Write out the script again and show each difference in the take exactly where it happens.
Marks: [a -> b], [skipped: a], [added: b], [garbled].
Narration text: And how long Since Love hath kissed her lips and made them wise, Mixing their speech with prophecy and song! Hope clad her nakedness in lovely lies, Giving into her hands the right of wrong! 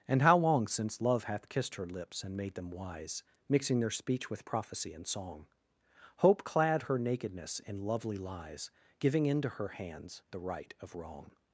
And how long Since Love hath kissed her lips and made them wise, Mixing their speech with prophecy and song! Hope clad her nakedness in lovely lies, Giving into her hands the right of wrong!